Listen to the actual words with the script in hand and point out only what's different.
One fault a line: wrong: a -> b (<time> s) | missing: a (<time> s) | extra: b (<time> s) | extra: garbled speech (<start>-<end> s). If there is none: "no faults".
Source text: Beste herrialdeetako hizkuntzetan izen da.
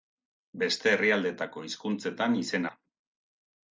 no faults